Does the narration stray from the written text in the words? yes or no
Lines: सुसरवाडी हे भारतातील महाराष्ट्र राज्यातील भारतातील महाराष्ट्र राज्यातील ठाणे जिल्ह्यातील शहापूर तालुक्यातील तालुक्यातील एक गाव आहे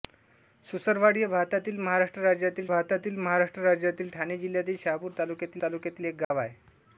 no